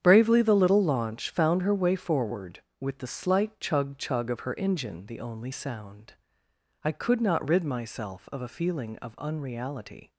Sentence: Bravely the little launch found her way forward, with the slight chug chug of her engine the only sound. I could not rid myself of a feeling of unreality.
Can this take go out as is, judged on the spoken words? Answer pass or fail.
pass